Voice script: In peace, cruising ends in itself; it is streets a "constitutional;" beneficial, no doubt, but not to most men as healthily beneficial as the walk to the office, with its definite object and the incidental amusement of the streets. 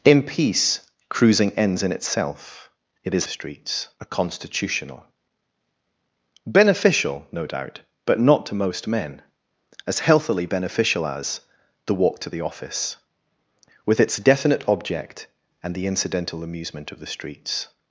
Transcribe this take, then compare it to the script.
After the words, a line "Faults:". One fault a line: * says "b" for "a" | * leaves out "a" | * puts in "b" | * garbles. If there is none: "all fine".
In peace, cruising ends in itself; it is streets a "constitutional;" beneficial, no doubt, but not to most men as healthily beneficial as the walk to the office, with its definite object and the incidental amusement of the streets.
Faults:
all fine